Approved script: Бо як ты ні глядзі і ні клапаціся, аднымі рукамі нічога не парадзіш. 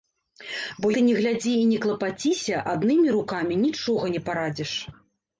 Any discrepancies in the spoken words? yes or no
yes